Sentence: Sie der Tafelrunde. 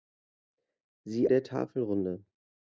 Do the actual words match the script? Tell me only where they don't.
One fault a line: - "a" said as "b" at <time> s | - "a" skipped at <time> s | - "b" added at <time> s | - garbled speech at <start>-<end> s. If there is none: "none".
none